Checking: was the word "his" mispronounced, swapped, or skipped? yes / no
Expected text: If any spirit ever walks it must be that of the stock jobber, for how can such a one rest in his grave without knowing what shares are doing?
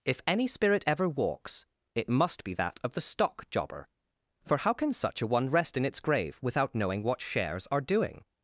yes